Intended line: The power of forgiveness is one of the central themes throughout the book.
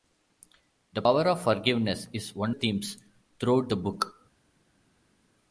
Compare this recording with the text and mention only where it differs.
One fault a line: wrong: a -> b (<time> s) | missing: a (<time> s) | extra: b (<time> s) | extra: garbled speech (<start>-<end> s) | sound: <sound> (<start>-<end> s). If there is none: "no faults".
missing: of the central (2.5 s)